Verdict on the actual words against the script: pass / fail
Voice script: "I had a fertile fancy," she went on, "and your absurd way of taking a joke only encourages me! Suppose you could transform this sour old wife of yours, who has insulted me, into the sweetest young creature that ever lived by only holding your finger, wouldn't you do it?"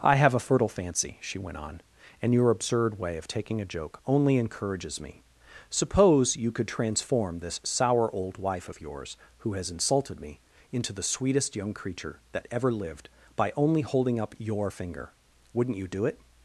fail